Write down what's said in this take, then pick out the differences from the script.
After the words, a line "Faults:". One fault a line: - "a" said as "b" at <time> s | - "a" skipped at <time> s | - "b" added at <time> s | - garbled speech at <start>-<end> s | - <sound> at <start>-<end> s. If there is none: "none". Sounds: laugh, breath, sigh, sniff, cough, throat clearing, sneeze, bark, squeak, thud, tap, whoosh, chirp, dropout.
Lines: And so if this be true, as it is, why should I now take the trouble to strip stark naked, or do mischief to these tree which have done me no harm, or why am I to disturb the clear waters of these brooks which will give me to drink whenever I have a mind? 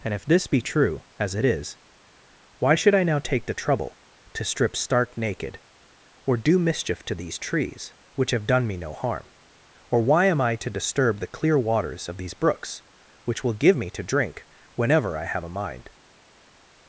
And if this be true, as it is, why should I now take the trouble to strip stark naked, or do mischief to these trees which have done me no harm, or why am I to disturb the clear waters of these brooks which will give me to drink whenever I have a mind?
Faults:
- "so" skipped at 0.1 s
- "tree" said as "trees" at 7.4 s